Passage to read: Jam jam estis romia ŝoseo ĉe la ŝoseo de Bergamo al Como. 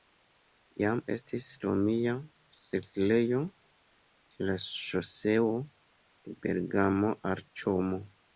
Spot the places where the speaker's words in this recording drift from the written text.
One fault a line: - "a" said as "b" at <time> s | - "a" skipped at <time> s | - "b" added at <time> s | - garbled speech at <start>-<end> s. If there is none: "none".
- "jam" skipped at 1.0 s
- "ŝoseo" said as "setlejo" at 2.6 s